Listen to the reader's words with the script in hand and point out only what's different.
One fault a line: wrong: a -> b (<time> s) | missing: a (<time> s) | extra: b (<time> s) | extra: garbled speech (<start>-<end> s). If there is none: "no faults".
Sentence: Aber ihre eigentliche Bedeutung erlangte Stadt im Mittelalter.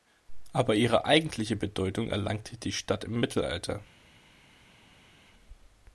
extra: die (2.6 s)